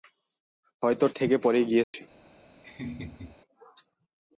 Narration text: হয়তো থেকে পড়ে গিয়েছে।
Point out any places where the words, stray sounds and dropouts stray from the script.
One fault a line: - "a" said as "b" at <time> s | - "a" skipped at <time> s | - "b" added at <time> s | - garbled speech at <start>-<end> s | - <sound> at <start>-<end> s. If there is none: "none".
- dropout at 1.8-1.9 s
- laugh at 2.6-3.4 s